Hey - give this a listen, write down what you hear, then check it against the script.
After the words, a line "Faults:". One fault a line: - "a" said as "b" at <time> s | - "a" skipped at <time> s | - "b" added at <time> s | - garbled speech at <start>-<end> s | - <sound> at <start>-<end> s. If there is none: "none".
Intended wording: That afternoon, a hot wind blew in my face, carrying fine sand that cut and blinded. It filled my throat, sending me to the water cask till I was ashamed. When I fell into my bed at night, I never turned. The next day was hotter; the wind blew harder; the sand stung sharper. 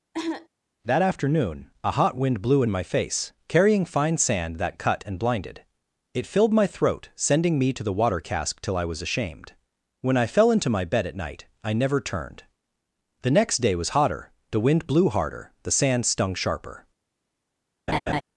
That afternoon, a hot wind blew in my face, carrying fine sand that cut and blinded. It filled my throat, sending me to the water cask till I was ashamed. When I fell into my bed at night, I never turned. The next day was hotter; the wind blew harder; the sand stung sharper.
Faults:
- cough at 0.1-0.5 s
- laugh at 17.9-18.2 s